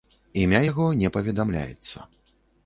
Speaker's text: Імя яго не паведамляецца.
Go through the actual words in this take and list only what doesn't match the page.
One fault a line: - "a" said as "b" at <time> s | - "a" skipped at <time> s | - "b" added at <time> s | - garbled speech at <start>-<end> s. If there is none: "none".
none